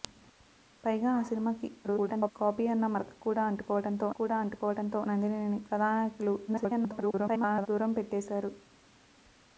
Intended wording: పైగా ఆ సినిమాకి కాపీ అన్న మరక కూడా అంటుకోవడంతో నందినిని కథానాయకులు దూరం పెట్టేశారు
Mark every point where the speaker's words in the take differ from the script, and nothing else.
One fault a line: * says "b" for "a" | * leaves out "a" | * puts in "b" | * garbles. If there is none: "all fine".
* garbles
* puts in "కూడా అంటుకోవడంతో"
* garbles